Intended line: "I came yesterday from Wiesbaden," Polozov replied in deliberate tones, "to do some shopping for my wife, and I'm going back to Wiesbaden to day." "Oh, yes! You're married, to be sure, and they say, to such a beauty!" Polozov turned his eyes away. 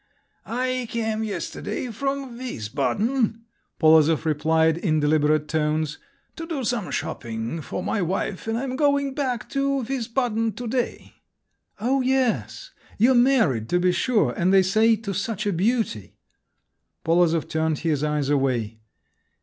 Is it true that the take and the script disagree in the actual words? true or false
false